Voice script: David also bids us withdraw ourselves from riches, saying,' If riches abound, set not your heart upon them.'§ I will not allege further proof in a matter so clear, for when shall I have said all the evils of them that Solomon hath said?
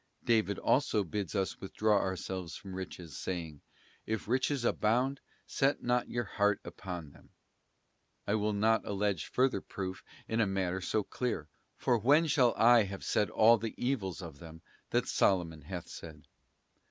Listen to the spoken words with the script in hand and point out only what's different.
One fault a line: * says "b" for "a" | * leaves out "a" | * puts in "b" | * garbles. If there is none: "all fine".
all fine